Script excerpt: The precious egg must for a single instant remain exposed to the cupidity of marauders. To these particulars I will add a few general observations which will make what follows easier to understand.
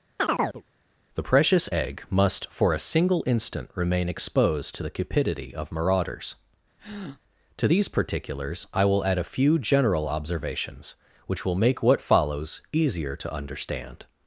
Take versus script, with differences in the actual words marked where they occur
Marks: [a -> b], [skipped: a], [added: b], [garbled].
The precious egg must for a single instant remain exposed to the cupidity of marauders. To these particulars I will add a few general observations which will make what follows easier to understand.